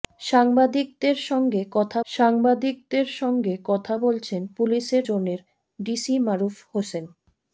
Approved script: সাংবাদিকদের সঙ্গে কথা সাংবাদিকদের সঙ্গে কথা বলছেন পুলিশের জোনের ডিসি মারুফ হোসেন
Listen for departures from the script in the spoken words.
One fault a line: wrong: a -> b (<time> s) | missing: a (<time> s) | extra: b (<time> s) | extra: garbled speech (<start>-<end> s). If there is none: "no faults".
no faults